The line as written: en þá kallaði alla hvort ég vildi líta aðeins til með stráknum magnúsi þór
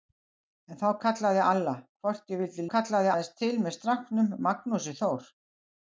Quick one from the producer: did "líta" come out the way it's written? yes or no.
no